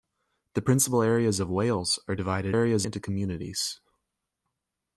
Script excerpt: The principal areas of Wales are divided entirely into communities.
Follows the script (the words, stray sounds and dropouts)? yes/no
no